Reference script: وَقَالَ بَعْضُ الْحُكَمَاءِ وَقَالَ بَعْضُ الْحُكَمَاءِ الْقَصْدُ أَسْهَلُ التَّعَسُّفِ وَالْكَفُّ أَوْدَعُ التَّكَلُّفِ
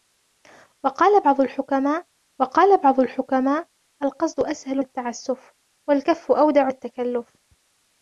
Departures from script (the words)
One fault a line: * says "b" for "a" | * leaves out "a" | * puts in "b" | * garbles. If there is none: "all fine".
all fine